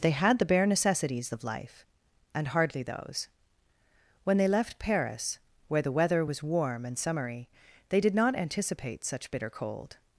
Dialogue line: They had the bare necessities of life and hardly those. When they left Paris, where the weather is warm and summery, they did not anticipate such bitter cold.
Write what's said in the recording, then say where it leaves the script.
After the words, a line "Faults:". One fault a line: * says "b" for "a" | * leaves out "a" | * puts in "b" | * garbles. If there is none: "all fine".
They had the bare necessities of life and hardly those. When they left Paris, where the weather was warm and summery, they did not anticipate such bitter cold.
Faults:
* says "was" for "is"